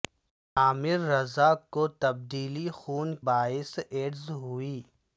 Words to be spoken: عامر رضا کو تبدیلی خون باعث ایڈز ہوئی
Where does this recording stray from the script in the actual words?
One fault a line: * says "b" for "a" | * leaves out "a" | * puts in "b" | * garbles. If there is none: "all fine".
all fine